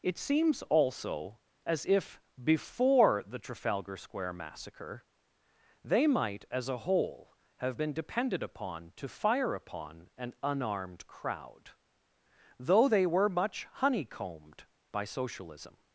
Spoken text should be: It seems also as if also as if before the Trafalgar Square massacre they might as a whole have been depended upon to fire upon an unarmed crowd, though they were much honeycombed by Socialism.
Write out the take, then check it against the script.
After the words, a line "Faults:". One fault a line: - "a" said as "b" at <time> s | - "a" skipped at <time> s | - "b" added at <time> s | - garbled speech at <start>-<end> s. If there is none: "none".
It seems also as if before the Trafalgar Square massacre they might as a whole have been depended upon to fire upon an unarmed crowd, though they were much honeycombed by Socialism.
Faults:
- "also as if" skipped at 2.2 s